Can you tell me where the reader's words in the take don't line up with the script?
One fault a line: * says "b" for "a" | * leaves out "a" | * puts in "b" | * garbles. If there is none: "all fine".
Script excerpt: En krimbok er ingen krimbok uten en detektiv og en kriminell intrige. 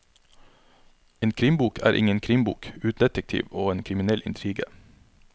* leaves out "en"